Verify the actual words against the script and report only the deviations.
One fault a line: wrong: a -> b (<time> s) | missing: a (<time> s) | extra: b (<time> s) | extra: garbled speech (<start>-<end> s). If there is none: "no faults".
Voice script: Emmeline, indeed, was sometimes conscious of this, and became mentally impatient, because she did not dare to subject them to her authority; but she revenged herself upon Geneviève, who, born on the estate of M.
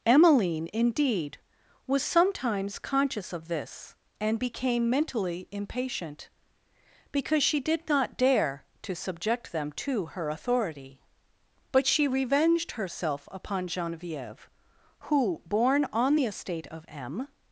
no faults